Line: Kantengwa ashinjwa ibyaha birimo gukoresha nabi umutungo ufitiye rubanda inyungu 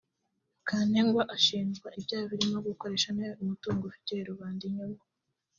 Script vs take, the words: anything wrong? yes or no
no